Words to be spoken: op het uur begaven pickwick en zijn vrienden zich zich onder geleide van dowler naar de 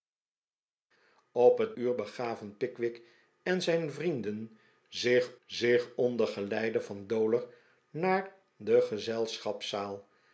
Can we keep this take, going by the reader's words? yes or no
yes